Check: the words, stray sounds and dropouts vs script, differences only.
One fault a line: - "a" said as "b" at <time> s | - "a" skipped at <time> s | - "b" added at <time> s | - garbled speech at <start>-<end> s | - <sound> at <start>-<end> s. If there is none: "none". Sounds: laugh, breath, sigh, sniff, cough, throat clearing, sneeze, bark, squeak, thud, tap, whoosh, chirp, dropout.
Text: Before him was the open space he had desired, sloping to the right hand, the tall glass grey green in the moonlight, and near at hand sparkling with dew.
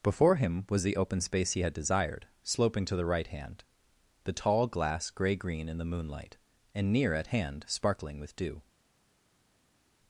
none